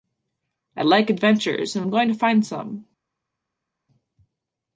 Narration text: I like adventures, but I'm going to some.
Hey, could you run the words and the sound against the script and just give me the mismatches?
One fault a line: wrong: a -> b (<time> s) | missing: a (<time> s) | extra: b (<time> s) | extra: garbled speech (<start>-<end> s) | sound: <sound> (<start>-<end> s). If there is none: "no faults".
wrong: but -> and (1.8 s)
extra: find (2.1 s)